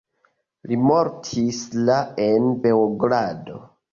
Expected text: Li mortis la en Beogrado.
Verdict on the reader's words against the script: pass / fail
pass